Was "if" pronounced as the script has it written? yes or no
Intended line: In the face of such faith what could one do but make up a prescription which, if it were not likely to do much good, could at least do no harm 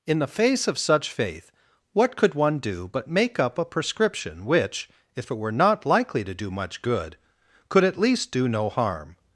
yes